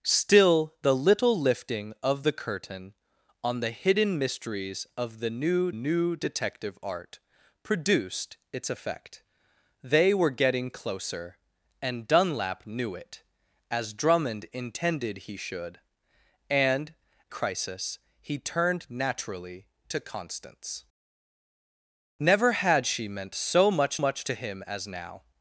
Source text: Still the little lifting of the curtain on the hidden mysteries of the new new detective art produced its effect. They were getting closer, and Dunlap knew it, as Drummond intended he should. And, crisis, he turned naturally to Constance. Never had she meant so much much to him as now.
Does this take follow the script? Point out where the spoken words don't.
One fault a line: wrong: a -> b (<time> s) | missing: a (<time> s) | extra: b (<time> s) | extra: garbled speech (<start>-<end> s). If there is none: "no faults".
no faults